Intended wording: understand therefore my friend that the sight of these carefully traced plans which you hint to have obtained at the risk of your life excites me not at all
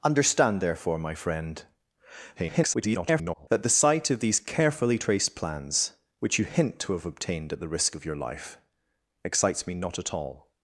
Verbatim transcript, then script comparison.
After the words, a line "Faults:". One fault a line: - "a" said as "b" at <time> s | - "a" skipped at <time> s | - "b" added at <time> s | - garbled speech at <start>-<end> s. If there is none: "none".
understand therefore my friend [garbled] that the sight of these carefully traced plans which you hint to have obtained at the risk of your life excites me not at all
Faults:
- garbled speech at 2.4-3.5 s